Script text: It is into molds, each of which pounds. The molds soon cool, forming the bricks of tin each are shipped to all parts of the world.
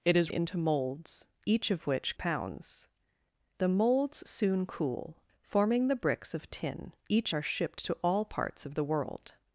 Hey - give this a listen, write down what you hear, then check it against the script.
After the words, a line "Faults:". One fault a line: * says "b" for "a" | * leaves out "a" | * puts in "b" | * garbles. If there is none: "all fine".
It is into molds, each of which pounds. The molds soon cool, forming the bricks of tin each are shipped to all parts of the world.
Faults:
all fine